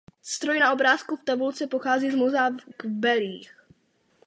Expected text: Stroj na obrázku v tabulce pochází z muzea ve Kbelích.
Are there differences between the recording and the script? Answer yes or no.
yes